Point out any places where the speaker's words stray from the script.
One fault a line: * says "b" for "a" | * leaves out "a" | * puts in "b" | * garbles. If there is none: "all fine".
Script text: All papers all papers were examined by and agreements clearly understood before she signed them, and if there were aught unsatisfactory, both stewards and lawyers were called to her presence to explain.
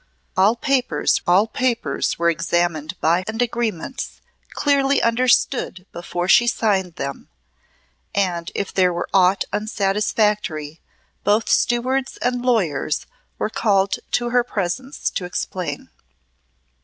all fine